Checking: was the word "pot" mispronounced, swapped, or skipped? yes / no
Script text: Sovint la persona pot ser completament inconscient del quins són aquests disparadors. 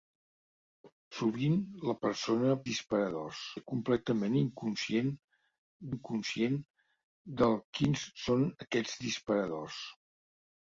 yes